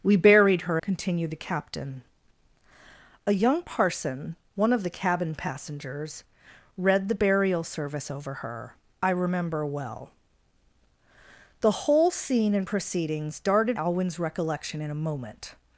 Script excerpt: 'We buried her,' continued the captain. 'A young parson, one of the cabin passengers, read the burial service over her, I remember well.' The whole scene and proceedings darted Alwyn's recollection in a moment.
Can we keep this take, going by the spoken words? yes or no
yes